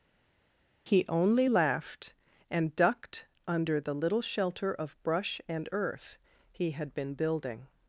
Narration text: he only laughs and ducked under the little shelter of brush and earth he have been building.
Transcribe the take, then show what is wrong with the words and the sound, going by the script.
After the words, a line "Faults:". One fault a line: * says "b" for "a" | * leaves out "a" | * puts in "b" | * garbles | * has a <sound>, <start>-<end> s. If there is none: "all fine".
he only laughed and ducked under the little shelter of brush and earth he had been building.
Faults:
* says "laughed" for "laughs"
* says "had" for "have"